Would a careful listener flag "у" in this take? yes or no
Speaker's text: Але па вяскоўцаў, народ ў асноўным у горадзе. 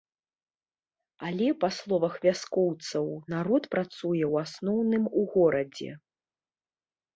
no